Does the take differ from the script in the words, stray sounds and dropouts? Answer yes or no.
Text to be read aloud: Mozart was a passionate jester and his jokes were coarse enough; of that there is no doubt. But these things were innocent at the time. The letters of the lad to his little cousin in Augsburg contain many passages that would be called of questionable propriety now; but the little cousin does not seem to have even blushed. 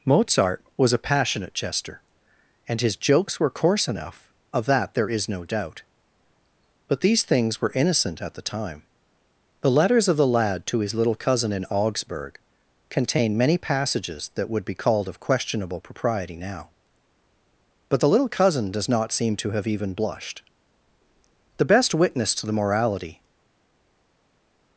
yes